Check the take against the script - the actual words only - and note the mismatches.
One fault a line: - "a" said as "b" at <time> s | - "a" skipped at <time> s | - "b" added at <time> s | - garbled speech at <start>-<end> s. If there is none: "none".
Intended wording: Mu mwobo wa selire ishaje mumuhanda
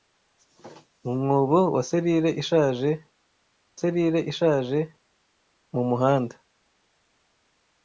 - "selire ishaje" added at 3.8 s